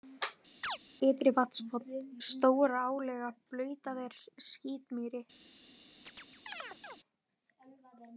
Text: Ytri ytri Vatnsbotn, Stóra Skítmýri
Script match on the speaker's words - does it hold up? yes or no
no